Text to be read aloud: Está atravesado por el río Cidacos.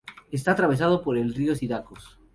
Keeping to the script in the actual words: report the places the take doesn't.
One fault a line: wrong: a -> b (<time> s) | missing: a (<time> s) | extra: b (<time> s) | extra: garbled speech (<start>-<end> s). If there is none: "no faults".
no faults